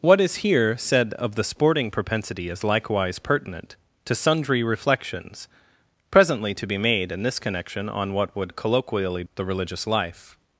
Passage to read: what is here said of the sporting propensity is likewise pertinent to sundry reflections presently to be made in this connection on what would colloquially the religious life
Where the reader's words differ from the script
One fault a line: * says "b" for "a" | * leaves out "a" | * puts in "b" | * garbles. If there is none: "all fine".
all fine